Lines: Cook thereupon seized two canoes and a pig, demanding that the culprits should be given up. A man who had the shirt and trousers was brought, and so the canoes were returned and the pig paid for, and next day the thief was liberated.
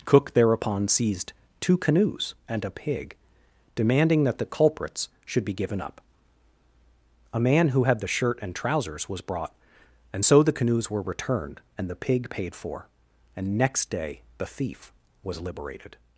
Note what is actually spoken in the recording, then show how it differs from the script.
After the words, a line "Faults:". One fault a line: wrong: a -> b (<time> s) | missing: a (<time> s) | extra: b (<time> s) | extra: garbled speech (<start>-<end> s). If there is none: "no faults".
Cook thereupon seized two canoes and a pig, demanding that the culprits should be given up. A man who had the shirt and trousers was brought, and so the canoes were returned and the pig paid for, and next day the thief was liberated.
Faults:
no faults